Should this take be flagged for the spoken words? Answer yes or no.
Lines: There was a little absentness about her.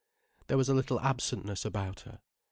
no